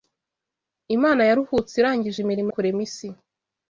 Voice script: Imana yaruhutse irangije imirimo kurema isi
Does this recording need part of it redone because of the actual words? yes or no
no